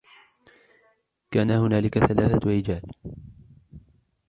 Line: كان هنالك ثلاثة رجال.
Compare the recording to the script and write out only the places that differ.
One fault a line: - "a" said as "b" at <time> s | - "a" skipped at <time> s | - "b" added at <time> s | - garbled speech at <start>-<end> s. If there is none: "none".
none